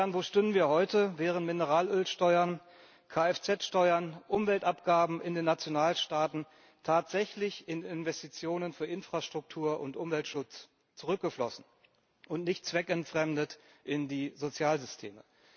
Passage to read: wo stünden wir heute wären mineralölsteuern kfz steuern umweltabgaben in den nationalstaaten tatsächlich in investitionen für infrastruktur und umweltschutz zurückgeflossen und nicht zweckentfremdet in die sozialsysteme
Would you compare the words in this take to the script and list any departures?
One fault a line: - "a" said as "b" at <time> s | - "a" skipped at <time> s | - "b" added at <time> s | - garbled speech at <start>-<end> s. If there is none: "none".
none